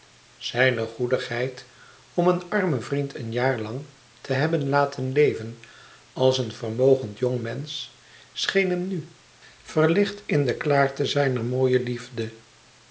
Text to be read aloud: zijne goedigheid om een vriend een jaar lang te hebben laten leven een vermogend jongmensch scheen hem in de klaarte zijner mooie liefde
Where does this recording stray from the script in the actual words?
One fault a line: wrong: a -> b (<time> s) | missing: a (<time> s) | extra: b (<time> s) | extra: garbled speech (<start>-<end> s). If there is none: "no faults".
extra: armen (2.5 s)
extra: als (6.1 s)
extra: nu verlicht (8.9 s)